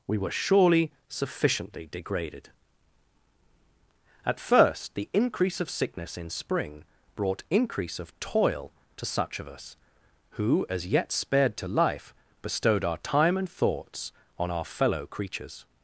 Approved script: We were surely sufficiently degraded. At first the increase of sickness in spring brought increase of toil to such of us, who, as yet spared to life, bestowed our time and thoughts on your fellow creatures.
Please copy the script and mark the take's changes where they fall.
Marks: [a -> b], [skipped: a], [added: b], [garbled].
We were surely sufficiently degraded. At first the increase of sickness in spring brought increase of toil to such of us, who, as yet spared to life, bestowed our time and thoughts on [your -> our] fellow creatures.